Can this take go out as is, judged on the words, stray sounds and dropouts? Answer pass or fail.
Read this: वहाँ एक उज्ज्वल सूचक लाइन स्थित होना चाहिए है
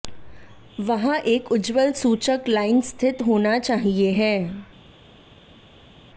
pass